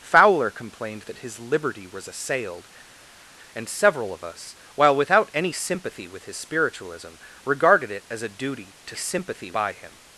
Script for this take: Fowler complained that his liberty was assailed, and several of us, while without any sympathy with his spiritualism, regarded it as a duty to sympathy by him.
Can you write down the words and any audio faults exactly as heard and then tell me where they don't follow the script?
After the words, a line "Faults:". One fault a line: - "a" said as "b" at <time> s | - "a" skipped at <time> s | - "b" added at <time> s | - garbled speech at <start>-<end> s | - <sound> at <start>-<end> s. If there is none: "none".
Fowler complained that his liberty was assailed, and several of us, while without any sympathy with his spiritualism, regarded it as a duty to sympathy by him.
Faults:
none